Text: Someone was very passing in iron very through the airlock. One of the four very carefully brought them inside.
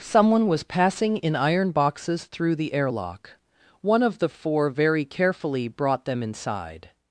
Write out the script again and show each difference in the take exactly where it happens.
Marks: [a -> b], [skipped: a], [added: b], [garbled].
Someone was [skipped: very] passing in iron [very -> boxes] through the airlock. One of the four very carefully brought them inside.